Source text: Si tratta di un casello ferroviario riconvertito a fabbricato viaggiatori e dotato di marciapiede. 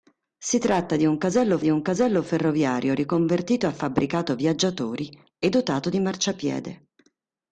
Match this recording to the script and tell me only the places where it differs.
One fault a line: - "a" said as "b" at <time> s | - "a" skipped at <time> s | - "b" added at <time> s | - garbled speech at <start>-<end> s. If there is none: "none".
- "di un casello" added at 1.6 s